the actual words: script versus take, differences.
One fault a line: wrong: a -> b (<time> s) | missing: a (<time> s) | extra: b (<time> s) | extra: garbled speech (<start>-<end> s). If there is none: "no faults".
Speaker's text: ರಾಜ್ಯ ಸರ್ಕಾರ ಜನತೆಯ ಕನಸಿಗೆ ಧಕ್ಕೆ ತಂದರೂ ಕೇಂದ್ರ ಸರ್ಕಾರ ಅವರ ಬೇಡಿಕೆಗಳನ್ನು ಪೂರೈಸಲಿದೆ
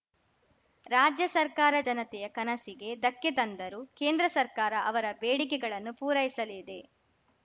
no faults